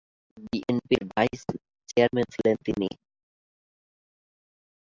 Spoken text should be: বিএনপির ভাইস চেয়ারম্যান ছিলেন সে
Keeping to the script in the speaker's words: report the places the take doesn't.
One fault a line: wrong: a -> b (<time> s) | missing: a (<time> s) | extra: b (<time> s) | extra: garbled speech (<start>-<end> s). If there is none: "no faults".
wrong: সে -> তিনি (2.6 s)